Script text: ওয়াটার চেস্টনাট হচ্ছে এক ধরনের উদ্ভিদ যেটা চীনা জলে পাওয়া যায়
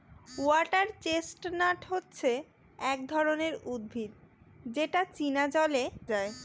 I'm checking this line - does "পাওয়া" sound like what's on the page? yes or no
no